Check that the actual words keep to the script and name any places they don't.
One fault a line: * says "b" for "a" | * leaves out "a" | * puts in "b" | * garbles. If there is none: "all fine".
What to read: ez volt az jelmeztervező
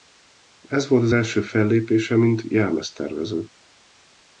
* puts in "első fellépése mint"